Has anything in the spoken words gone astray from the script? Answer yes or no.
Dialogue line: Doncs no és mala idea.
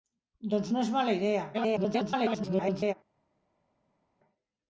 yes